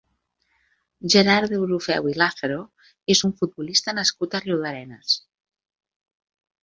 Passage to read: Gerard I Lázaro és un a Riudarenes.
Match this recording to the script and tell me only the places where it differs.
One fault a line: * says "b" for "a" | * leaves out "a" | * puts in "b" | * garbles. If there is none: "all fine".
* puts in "Deulofeu"
* puts in "futbolista nascut"